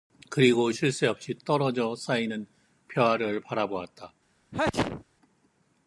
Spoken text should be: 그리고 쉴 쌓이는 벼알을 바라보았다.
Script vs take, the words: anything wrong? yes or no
yes